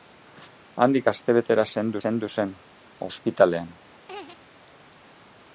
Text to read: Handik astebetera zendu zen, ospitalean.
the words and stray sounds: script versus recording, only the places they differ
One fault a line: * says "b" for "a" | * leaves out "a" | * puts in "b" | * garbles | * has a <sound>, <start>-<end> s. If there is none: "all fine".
* puts in "zendu"
* has a laugh, 4.1-4.4 s